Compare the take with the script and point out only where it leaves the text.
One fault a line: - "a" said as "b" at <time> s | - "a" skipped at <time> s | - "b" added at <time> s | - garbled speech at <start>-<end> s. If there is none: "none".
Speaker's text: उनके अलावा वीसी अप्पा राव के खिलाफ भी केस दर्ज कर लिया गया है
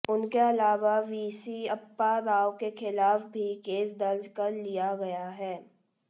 none